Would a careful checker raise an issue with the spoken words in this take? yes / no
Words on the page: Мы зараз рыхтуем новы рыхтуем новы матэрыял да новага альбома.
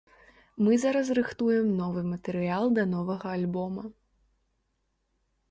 yes